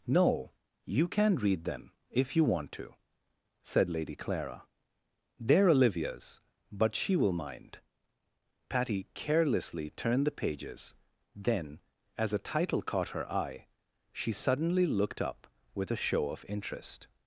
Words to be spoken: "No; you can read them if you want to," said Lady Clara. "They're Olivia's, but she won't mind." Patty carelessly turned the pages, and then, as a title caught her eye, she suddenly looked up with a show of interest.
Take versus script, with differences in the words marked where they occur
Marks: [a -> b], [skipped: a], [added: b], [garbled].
"No; you can read them if you want to," said Lady Clara. "They're Olivia's, but she [won't -> will] mind." Patty carelessly turned the pages, [skipped: and] then, as a title caught her eye, she suddenly looked up with a show of interest.